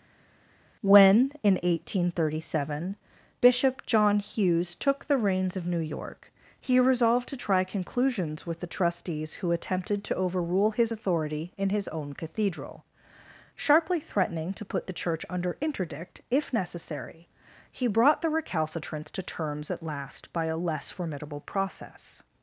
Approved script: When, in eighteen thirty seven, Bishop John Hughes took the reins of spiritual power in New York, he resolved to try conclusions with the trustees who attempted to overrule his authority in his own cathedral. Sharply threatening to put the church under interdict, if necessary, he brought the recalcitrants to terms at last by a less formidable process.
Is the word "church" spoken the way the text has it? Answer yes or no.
yes